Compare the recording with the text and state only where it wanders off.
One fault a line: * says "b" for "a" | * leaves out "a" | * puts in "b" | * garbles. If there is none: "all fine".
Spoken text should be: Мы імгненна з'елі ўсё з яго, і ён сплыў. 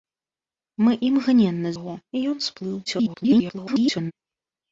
* leaves out "з'елі ўсё з"
* garbles